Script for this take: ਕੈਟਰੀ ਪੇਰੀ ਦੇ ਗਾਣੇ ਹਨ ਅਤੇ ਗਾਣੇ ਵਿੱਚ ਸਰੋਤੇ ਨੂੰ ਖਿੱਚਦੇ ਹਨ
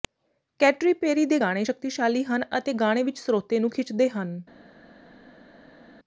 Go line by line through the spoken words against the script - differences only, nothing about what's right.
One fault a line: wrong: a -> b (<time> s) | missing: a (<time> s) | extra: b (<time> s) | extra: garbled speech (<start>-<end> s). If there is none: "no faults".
extra: ਸ਼ਕਤੀਸ਼ਾਲੀ (1.6 s)